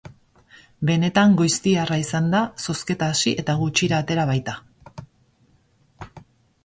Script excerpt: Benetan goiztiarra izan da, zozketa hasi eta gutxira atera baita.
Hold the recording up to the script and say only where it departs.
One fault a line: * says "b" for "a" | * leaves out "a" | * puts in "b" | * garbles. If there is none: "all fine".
all fine